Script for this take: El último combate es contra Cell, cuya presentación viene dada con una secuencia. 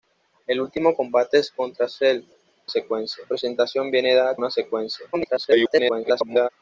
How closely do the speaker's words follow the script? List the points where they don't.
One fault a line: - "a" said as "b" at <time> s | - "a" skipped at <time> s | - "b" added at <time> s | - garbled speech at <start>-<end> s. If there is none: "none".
- "cuya" said as "secuencia" at 2.7 s
- "con" skipped at 4.4 s
- garbled speech at 5.1-6.5 s